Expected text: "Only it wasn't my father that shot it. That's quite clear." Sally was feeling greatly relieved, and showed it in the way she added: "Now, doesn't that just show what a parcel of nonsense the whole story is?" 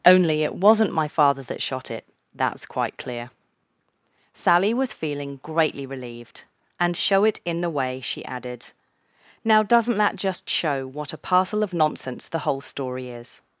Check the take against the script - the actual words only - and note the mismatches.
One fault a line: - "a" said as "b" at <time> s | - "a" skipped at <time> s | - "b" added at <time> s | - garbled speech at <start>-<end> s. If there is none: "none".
- "showed" said as "show" at 7.0 s